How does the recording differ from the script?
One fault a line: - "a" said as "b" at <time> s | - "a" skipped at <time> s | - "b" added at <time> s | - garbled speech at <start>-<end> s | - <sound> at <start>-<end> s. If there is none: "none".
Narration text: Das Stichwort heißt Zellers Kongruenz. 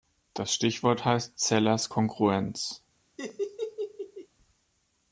- laugh at 3.2-4.3 s